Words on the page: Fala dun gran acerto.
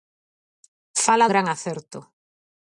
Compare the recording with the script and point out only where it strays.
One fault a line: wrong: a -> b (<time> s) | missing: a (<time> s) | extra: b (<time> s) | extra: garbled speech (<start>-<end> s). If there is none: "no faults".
missing: dun (1.3 s)